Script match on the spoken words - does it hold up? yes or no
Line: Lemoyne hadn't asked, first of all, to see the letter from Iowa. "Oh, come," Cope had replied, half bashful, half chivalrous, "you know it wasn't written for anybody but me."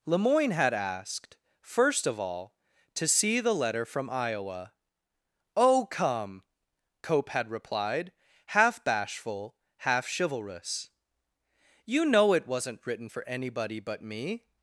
no